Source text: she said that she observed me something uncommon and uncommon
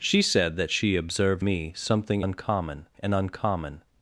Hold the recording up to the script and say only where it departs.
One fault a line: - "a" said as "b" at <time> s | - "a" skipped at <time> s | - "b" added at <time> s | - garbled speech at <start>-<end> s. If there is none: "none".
none